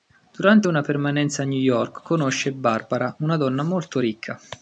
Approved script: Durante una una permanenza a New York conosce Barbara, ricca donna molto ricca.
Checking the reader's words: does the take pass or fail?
fail